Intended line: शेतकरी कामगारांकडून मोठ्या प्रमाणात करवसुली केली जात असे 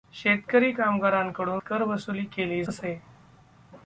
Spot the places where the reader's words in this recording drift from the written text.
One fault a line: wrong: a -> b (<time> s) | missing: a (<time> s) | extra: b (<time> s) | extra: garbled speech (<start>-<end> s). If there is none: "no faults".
missing: मोठ्या प्रमाणात (1.6 s)
missing: जात (2.6 s)